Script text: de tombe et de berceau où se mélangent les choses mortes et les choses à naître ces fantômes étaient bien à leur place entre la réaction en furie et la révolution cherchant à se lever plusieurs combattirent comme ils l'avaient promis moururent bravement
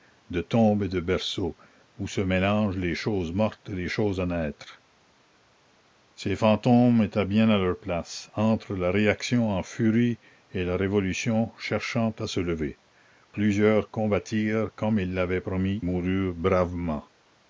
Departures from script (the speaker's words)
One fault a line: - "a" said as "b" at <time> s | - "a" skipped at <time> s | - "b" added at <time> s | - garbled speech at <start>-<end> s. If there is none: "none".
none